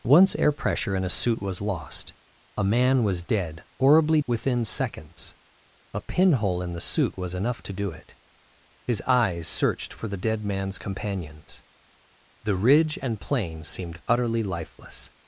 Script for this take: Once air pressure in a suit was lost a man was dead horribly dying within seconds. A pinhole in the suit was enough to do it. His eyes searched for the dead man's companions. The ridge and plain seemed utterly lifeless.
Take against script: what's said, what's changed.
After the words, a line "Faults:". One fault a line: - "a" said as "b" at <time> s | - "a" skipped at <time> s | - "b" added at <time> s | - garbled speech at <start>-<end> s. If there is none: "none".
Once air pressure in a suit was lost a man was dead horribly within seconds. A pinhole in the suit was enough to do it. His eyes searched for the dead man's companions. The ridge and plain seemed utterly lifeless.
Faults:
- "dying" skipped at 4.2 s